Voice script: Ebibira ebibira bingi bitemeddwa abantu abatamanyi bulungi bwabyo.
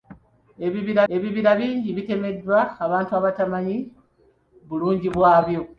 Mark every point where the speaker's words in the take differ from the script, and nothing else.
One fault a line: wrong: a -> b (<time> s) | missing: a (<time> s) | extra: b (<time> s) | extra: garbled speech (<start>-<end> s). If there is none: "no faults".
no faults